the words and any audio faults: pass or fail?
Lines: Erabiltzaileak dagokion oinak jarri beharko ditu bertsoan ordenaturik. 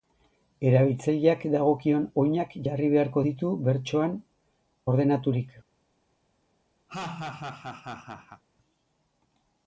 fail